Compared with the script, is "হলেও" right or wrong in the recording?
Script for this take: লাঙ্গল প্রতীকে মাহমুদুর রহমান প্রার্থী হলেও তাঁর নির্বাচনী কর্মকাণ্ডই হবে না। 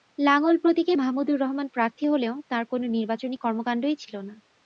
right